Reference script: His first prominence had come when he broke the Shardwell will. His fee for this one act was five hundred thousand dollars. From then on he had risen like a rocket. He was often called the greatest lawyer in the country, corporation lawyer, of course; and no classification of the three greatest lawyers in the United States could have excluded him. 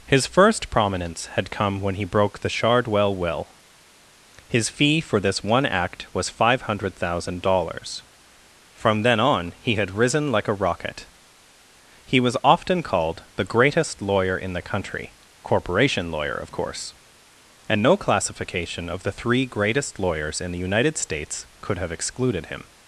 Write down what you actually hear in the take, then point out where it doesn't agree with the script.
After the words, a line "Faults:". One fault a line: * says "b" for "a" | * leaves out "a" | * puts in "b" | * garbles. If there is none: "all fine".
His first prominence had come when he broke the Shardwell will. His fee for this one act was five hundred thousand dollars. From then on he had risen like a rocket. He was often called the greatest lawyer in the country, corporation lawyer, of course; and no classification of the three greatest lawyers in the United States could have excluded him.
Faults:
all fine